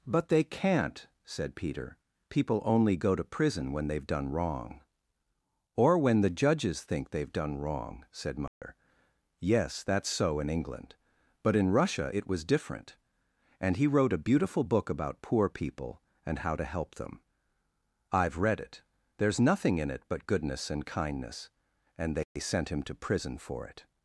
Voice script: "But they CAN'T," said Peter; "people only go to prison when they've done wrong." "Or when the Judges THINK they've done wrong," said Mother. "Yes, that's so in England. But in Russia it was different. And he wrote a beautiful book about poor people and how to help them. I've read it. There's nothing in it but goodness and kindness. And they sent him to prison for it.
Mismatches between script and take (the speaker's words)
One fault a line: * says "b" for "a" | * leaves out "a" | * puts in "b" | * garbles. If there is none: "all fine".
all fine